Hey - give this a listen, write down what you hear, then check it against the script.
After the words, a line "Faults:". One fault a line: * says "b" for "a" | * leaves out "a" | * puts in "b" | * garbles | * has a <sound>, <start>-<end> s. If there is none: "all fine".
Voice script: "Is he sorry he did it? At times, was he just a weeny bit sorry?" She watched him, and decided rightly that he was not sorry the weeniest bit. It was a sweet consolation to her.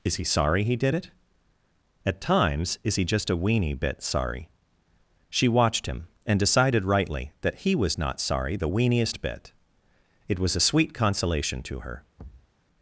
"Is he sorry he did it? At times, is he just a weeny bit sorry?" She watched him, and decided rightly that he was not sorry the weeniest bit. It was a sweet consolation to her.
Faults:
* says "is" for "was"
* has a thud, 12.2-12.5 s